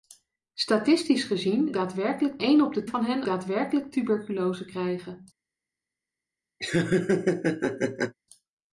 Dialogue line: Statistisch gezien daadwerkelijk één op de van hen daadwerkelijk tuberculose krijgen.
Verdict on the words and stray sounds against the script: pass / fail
fail